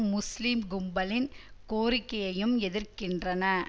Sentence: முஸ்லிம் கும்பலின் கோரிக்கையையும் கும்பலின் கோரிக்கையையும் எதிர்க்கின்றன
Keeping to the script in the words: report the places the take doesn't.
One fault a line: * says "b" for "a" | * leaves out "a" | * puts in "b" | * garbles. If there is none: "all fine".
* leaves out "கும்பலின் கோரிக்கையையும்"